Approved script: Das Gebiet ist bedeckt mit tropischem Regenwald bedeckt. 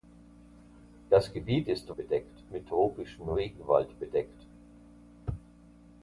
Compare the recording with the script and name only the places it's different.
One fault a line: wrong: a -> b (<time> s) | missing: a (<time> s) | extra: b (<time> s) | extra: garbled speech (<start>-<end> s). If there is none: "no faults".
no faults